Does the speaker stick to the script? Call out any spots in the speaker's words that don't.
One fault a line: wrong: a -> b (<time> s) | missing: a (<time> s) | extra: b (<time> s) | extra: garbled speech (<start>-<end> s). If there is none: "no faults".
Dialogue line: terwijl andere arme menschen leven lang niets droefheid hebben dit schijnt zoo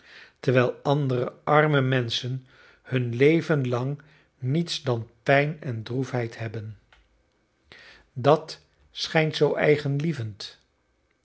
extra: hun (2.8 s)
extra: dan pijn en (4.8 s)
wrong: dit -> dat (8.1 s)